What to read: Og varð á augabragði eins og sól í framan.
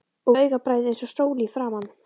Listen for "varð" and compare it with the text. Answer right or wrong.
wrong